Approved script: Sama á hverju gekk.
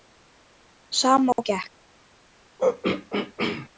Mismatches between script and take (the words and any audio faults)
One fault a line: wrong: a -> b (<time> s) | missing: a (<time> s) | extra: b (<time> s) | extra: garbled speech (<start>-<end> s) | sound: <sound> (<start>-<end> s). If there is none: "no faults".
missing: hverju (1.4 s)
sound: throat clearing (2.6-3.7 s)